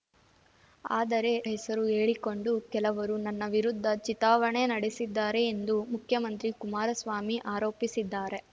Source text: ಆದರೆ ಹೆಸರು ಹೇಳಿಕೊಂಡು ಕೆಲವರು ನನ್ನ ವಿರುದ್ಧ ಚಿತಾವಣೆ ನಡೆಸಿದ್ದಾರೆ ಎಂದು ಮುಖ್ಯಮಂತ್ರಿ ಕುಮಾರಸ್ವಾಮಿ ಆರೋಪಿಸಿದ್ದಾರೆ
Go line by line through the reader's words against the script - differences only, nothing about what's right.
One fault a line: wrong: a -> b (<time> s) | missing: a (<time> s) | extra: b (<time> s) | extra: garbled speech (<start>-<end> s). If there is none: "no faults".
no faults